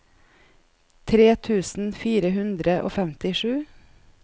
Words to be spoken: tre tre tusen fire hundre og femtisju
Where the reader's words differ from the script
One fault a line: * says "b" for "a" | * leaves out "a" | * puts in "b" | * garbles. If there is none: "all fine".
* leaves out "tre"